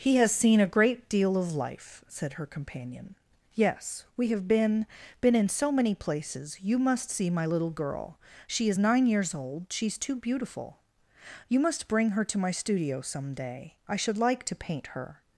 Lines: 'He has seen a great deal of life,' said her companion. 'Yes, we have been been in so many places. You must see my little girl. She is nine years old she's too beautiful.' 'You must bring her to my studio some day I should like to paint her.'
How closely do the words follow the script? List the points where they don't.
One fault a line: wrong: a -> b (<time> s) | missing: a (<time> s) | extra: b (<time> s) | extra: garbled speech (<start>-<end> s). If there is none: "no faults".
no faults